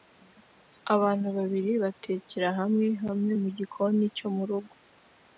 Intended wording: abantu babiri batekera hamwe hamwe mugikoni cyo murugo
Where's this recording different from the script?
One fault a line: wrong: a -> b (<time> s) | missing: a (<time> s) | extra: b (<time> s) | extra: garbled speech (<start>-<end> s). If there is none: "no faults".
no faults